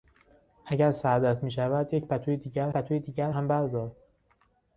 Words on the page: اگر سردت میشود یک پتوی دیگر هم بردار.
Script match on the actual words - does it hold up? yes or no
no